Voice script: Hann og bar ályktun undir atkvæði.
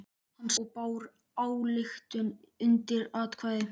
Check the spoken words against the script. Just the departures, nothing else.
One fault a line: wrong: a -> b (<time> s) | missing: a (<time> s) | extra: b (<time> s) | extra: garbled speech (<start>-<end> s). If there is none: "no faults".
no faults